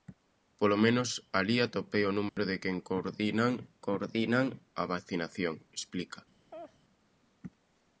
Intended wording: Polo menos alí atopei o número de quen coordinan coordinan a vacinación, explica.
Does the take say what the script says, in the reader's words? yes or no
yes